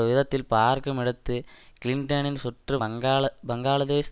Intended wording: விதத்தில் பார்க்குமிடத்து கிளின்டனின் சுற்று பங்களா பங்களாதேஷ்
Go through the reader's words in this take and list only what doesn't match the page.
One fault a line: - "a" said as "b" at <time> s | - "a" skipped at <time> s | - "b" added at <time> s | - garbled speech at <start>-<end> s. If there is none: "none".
none